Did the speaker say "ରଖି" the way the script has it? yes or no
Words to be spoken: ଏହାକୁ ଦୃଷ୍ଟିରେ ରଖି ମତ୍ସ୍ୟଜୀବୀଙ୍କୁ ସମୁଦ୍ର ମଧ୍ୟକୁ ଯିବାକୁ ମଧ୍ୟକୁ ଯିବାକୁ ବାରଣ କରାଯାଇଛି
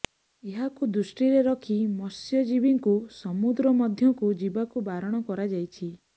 yes